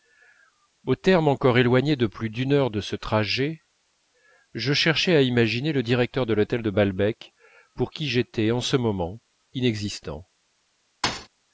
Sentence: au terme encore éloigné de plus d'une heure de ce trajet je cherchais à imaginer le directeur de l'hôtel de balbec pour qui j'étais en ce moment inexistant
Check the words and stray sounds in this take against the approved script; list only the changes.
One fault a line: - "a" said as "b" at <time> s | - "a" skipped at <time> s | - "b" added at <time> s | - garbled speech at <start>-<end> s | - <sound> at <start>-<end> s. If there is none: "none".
- thud at 11.0-11.3 s